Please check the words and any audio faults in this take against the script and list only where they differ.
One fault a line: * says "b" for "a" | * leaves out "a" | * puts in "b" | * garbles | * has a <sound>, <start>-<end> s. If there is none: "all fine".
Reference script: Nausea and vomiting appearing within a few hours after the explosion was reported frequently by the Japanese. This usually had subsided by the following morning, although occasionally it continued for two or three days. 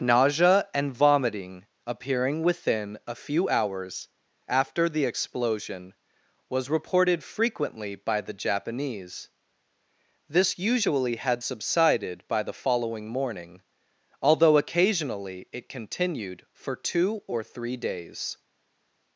all fine